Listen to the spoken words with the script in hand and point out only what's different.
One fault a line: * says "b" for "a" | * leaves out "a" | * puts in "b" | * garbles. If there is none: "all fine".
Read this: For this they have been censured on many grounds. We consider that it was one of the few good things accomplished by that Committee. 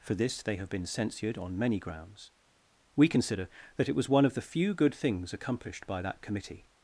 all fine